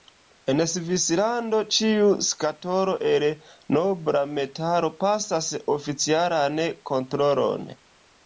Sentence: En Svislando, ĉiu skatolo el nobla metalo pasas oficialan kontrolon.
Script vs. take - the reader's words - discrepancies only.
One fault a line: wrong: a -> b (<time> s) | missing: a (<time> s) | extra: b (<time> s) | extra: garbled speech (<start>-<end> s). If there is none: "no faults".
no faults